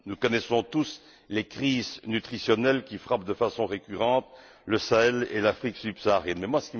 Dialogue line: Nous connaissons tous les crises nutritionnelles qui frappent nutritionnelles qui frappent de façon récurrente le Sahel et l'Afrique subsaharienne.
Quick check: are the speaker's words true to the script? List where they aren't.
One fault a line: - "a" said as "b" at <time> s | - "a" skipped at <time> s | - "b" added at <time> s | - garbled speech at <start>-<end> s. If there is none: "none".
- "nutritionnelles qui frappent" skipped at 3.2 s